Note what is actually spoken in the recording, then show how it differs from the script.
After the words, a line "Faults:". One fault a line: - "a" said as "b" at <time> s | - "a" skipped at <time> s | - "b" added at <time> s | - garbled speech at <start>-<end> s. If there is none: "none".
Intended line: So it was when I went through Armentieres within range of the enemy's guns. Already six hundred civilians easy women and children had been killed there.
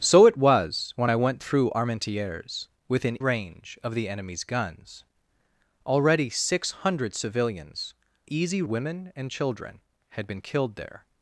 So it was when I went through Armentieres within range of the enemy's guns. Already six hundred civilians easy women and children had been killed there.
Faults:
none